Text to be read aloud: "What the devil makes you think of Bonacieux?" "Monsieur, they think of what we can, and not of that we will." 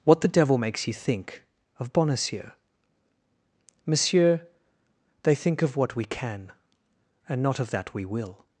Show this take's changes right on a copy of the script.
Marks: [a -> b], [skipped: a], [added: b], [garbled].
"What the devil makes you think of Bonacieux?" "Monsieur, they think of what we can, and not of that we will."